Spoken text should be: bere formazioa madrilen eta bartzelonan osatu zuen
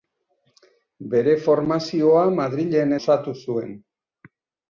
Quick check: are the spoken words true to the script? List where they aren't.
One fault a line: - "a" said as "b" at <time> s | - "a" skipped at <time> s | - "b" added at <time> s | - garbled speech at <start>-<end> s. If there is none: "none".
- "eta bartzelonan" skipped at 3.0 s